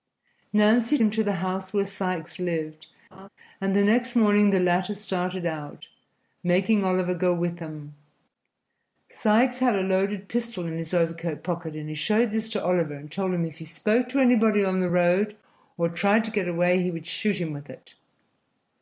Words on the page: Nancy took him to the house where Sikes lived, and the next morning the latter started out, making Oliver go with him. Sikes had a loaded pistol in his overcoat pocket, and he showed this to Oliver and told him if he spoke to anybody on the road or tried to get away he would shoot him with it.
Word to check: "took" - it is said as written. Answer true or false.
false